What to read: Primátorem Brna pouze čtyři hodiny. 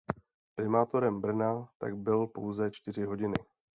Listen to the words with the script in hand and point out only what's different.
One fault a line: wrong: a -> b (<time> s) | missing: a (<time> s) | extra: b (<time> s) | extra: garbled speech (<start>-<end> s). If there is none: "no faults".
extra: tak byl (1.8 s)